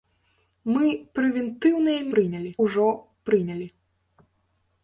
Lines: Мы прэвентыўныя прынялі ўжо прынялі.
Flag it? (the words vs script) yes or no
no